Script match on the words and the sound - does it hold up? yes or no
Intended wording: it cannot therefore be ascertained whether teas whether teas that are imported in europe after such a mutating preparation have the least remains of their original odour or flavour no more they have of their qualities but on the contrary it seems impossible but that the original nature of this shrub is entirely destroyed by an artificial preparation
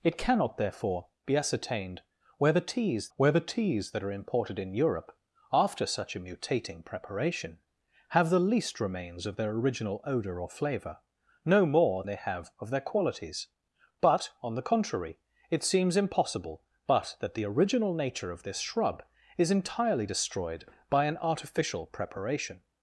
yes